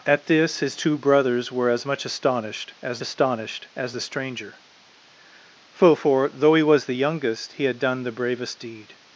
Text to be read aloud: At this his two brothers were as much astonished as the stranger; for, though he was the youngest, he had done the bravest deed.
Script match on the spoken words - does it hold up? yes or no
no